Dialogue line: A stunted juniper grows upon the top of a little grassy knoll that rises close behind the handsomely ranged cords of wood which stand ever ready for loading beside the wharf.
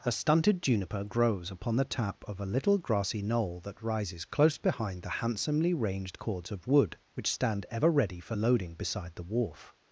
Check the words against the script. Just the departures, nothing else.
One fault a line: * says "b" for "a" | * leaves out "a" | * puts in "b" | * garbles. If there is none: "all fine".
* says "tap" for "top"